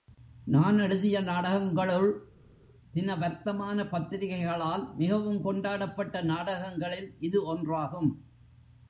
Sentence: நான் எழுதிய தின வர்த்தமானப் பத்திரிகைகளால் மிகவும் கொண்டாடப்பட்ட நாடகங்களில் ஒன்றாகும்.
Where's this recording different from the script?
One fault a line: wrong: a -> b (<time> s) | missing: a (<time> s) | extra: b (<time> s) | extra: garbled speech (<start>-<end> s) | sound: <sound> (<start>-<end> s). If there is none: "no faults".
extra: நாடகங்களுள் (1.2 s)
extra: இது (7.2 s)